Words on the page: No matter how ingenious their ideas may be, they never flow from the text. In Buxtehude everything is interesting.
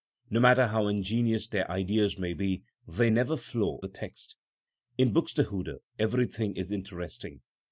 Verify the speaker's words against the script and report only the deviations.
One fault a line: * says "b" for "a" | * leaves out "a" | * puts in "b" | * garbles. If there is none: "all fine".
* leaves out "from"